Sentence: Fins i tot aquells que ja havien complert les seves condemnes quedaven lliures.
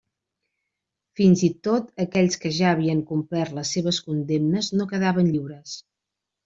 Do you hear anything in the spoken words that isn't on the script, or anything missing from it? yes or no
yes